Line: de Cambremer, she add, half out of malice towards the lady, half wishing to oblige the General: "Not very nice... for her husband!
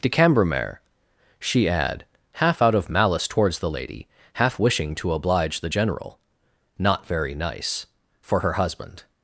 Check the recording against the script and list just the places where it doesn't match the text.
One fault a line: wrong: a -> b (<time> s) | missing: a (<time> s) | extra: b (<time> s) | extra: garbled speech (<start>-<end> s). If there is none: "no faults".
no faults